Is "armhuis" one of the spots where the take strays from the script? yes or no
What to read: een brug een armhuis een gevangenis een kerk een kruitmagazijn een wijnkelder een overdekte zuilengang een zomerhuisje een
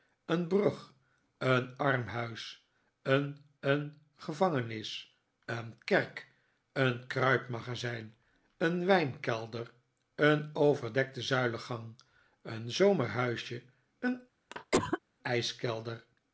no